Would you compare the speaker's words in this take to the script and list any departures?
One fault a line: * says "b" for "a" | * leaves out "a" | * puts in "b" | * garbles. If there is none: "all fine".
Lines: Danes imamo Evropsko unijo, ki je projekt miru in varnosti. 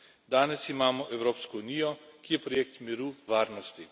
* leaves out "in"